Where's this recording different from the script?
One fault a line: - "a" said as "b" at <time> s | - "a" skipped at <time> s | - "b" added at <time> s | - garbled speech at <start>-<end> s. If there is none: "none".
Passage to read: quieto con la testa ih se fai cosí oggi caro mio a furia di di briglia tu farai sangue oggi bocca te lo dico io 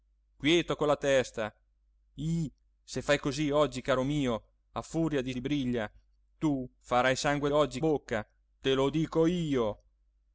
none